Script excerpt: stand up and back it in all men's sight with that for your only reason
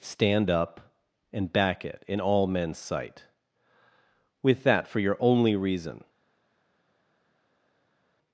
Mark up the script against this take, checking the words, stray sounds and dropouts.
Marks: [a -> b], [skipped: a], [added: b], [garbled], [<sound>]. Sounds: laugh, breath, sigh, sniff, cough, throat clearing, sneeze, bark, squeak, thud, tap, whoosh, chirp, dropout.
stand up and back it in all men's sight with that for your only reason